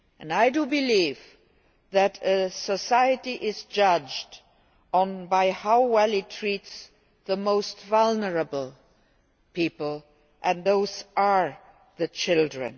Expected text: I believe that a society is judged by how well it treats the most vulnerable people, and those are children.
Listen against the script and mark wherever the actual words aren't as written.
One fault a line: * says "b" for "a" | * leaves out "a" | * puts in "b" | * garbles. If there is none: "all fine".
all fine